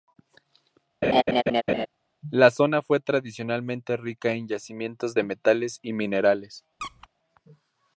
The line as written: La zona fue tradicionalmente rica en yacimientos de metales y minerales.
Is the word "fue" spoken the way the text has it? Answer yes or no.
yes